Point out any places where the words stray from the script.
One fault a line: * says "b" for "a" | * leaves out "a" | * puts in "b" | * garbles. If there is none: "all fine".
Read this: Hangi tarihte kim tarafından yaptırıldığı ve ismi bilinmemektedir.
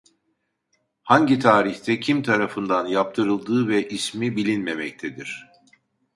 all fine